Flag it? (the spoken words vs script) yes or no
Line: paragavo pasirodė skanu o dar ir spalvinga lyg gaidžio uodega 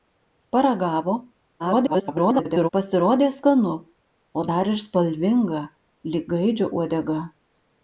yes